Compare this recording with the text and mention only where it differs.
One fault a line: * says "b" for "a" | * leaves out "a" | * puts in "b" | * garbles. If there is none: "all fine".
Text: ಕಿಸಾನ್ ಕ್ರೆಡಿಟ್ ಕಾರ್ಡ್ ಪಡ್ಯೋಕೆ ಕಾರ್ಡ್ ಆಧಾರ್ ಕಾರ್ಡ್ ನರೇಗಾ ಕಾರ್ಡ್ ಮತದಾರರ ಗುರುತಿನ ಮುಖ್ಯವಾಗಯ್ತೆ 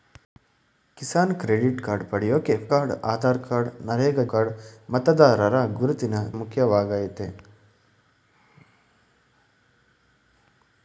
all fine